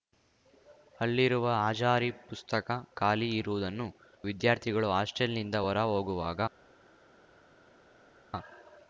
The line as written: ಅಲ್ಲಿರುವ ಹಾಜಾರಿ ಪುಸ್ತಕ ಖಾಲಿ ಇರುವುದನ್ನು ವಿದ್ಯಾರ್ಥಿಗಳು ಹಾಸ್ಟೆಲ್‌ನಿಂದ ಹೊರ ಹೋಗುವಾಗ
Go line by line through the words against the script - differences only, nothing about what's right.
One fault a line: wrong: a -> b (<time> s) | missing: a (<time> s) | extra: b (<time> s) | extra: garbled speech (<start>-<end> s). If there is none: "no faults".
no faults